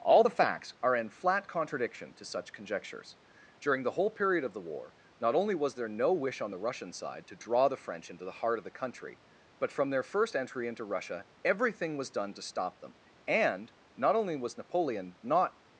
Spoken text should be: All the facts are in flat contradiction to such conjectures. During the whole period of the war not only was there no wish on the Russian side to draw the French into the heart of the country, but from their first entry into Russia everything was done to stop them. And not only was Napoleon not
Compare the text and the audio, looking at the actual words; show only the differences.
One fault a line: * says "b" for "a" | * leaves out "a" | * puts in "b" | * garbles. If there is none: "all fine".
all fine